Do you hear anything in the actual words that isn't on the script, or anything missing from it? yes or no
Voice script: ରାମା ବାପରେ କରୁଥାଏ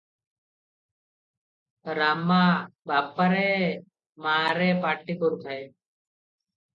yes